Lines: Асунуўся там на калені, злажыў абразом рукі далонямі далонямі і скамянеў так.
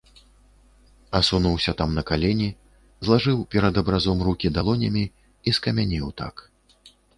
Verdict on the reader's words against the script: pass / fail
fail